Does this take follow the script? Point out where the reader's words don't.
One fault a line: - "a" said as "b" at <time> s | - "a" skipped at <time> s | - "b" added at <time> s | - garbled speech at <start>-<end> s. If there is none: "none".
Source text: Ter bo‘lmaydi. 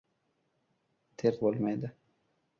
none